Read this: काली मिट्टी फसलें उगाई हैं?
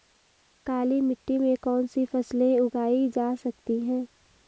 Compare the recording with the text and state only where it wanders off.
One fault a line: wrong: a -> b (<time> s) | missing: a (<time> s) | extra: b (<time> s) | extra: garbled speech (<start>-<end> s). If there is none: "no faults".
extra: में कौनसी (1.4 s)
extra: जा सकती (3.1 s)